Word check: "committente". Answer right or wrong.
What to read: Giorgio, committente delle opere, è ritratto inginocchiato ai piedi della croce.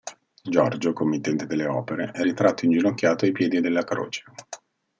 right